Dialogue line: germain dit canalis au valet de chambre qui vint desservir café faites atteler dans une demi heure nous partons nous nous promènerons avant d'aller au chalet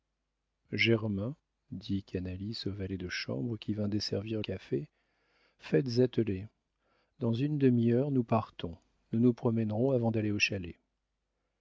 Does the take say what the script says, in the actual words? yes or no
yes